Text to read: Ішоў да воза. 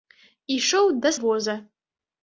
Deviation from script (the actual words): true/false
false